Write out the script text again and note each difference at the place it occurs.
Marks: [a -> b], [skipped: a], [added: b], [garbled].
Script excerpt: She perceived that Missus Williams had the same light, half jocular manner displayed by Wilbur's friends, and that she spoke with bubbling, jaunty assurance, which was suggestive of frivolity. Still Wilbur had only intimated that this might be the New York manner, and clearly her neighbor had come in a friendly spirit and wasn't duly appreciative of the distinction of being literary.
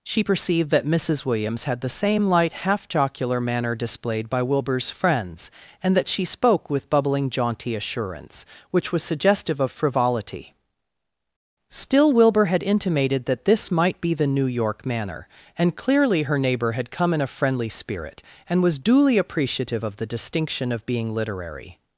She perceived that Missus Williams had the same light, half jocular manner displayed by Wilbur's friends, and that she spoke with bubbling, jaunty assurance, which was suggestive of frivolity. Still Wilbur had [skipped: only] intimated that this might be the New York manner, and clearly her neighbor had come in a friendly spirit and [wasn't -> was] duly appreciative of the distinction of being literary.